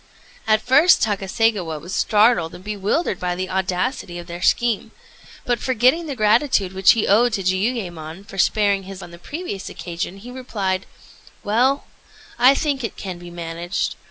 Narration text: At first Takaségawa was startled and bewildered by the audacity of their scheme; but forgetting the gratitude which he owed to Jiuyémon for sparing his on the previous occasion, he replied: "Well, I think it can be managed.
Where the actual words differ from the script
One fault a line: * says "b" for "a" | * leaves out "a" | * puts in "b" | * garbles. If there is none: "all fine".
all fine